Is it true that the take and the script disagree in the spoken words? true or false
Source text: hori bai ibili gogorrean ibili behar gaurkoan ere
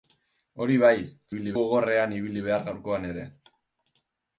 false